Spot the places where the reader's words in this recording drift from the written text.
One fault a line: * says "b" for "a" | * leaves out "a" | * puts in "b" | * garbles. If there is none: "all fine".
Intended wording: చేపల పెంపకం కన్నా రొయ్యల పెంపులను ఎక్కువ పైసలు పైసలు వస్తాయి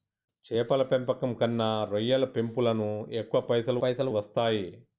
all fine